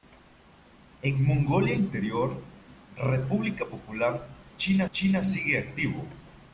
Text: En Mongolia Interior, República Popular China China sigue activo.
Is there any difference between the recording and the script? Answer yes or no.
no